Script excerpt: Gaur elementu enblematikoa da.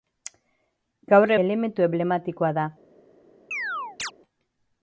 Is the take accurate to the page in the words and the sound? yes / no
no